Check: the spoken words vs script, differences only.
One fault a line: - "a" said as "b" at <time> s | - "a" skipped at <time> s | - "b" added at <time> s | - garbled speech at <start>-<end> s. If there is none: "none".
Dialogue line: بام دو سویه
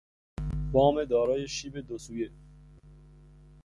- "دارای شیب" added at 1.1 s